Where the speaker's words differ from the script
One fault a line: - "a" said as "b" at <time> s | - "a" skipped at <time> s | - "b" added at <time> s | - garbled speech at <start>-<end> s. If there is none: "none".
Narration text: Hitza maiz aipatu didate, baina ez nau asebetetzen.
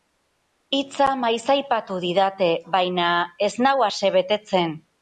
none